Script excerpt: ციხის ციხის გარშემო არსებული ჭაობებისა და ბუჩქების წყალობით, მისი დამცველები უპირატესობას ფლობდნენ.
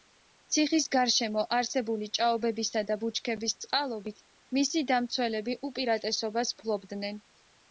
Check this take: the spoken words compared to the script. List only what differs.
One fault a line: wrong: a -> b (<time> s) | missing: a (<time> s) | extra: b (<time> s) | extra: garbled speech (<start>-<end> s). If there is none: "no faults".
missing: ციხის (0.8 s)